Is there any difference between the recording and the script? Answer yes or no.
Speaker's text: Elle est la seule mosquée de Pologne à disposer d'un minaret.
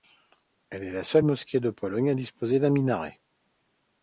no